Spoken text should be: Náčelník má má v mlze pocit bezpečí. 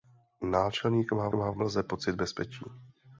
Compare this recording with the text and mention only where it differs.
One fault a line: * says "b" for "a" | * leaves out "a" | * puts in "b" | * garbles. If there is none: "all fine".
all fine